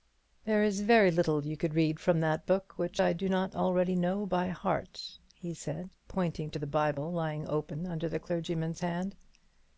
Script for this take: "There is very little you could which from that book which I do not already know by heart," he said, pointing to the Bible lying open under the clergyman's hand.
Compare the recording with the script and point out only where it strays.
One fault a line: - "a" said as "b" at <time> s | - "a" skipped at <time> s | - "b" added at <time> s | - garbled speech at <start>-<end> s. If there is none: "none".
- "which" said as "read" at 1.8 s